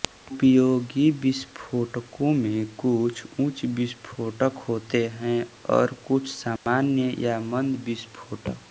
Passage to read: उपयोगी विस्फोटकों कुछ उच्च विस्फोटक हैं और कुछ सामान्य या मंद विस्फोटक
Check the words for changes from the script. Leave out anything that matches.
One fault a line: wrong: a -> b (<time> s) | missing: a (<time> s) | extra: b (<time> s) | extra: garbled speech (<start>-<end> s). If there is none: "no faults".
extra: में (2.4 s)
extra: होते (4.7 s)